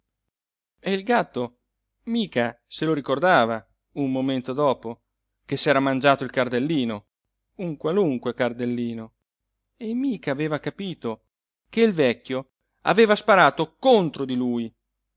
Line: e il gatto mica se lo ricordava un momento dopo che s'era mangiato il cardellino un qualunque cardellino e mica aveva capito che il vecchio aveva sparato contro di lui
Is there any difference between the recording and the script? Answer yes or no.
no